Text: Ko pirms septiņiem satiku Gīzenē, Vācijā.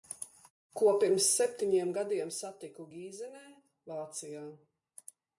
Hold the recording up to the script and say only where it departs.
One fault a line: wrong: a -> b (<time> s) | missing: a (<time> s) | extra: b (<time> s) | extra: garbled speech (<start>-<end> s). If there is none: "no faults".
extra: gadiem (2.0 s)